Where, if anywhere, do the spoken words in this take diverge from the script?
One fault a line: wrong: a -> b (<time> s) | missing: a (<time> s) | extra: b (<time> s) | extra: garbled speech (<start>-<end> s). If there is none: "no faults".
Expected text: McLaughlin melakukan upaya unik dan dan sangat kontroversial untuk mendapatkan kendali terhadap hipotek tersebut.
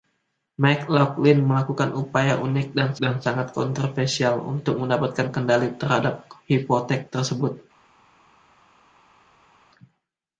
no faults